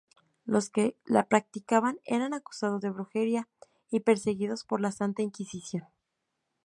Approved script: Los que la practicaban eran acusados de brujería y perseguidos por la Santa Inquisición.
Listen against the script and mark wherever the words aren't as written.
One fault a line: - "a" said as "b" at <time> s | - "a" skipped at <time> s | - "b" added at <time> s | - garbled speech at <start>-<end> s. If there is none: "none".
none